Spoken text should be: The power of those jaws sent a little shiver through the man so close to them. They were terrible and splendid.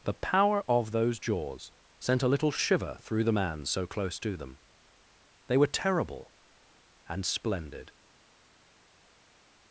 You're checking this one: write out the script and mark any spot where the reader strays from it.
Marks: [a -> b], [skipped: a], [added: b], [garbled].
The power of those jaws sent a little shiver through the man so close to them. They were terrible and splendid.